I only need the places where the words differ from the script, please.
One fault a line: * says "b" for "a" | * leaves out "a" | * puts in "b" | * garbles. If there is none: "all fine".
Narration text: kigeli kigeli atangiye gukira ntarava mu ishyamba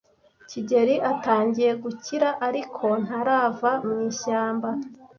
* leaves out "kigeli"
* puts in "ariko"